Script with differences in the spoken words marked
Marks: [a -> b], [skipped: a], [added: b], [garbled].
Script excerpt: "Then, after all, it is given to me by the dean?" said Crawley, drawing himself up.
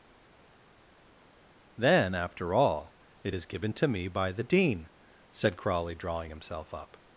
"Then, after all, it is given to me by the dean?" said Crawley, drawing himself up.